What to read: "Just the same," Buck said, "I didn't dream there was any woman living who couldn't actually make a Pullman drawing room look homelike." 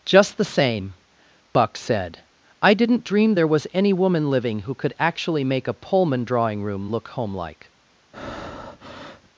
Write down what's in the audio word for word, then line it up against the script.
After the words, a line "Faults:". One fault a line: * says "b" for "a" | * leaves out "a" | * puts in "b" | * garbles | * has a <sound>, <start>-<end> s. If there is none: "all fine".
"Just the same," Buck said, "I didn't dream there was any woman living who could actually make a Pullman drawing room look homelike."
Faults:
* says "could" for "couldn't"
* has a breath, 8.1-9.3 s